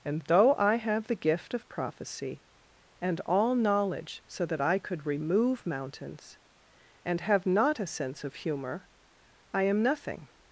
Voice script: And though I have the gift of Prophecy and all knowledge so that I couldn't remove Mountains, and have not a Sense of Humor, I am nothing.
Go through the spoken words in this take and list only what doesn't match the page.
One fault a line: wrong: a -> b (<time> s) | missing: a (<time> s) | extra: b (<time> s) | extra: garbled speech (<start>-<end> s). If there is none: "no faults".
wrong: couldn't -> could (4.8 s)